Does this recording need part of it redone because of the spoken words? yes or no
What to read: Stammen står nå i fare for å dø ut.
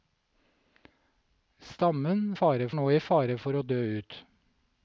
yes